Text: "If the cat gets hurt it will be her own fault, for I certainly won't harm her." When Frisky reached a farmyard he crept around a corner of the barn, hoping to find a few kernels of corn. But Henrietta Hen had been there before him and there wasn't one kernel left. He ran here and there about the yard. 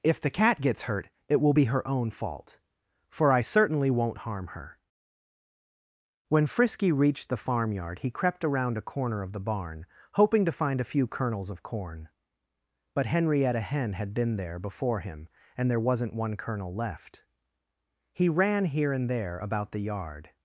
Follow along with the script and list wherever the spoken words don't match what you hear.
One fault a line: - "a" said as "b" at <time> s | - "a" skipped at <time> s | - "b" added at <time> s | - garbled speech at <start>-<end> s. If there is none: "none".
- "a" said as "the" at 7.3 s